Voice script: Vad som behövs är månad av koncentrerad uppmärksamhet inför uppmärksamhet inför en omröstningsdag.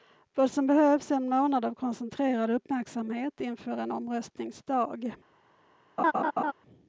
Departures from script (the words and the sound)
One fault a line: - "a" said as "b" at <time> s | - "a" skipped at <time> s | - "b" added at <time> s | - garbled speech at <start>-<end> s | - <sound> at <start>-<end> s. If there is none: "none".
- "en" added at 1.1 s
- "uppmärksamhet inför" skipped at 3.8 s
- laugh at 6.0-6.5 s